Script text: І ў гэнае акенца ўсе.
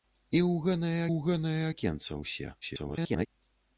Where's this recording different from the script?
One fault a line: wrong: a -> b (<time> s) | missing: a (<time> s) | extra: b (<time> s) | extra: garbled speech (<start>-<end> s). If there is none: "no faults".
extra: ў гэнае (1.1 s)
extra: garbled speech (2.6-3.3 s)